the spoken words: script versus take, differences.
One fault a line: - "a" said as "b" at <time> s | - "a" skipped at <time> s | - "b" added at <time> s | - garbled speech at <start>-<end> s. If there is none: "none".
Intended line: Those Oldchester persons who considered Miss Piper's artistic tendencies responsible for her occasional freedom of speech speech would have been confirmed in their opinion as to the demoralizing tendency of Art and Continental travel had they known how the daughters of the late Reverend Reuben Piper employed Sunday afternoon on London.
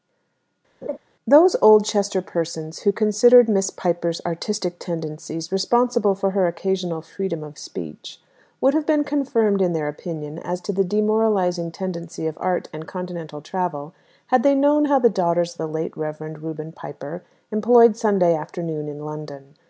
- "speech" skipped at 8.2 s
- "on" said as "in" at 18.9 s